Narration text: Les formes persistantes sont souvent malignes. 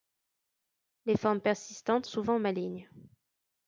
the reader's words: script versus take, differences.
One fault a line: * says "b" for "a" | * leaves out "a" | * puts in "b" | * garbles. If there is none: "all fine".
* leaves out "sont"